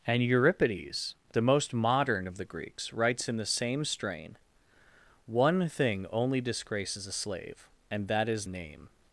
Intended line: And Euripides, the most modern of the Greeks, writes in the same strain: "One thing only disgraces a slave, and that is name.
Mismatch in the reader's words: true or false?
false